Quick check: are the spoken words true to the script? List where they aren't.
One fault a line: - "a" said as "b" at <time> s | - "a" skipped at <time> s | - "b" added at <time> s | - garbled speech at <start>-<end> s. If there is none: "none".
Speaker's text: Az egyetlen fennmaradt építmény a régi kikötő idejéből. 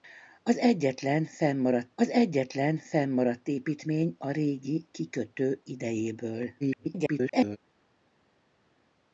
- "az egyetlen fennmaradt" added at 1.9 s
- garbled speech at 6.6-7.6 s